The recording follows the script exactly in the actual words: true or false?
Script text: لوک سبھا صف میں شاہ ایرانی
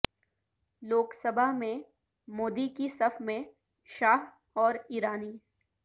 false